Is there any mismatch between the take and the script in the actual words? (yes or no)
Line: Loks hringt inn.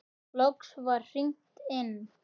yes